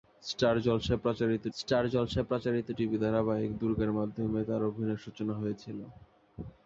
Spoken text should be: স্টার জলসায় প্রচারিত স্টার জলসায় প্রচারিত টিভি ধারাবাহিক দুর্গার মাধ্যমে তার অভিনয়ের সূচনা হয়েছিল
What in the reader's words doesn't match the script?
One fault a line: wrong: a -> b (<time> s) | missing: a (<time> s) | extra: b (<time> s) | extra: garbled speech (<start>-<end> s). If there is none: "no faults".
no faults